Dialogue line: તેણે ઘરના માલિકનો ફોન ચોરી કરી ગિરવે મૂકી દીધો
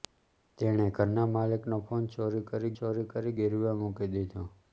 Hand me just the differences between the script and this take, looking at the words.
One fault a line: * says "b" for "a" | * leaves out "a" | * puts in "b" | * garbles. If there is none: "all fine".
* puts in "ચોરી કરી"